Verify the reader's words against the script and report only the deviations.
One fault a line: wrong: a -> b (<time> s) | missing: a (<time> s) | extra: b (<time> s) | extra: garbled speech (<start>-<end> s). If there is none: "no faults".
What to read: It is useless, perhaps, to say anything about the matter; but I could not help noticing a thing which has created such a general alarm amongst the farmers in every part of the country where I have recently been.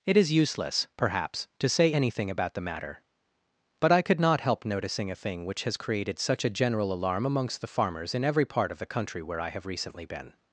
no faults